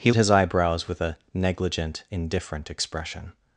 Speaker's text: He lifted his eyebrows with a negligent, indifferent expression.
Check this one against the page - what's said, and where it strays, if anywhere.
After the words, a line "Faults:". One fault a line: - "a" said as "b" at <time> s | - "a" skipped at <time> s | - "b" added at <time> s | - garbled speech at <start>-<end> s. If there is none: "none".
He his eyebrows with a negligent, indifferent expression.
Faults:
- "lifted" skipped at 0.1 s